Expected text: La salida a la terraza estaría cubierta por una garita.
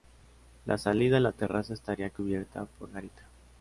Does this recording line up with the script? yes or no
no